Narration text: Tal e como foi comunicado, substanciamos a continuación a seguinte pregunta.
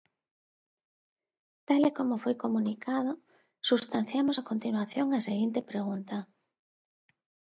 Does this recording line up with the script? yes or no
yes